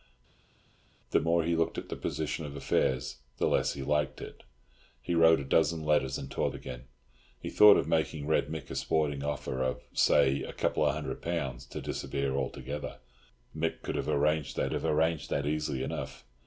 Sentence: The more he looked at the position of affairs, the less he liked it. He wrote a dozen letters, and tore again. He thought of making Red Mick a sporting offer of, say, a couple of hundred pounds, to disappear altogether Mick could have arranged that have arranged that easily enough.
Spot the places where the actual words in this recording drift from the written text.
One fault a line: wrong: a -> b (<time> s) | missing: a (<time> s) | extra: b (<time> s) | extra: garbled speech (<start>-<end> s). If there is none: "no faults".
no faults